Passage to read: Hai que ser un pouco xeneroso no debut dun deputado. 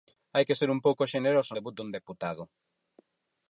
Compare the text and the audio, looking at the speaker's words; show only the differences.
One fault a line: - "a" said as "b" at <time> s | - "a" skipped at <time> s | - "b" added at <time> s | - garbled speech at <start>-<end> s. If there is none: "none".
- "no" skipped at 1.5 s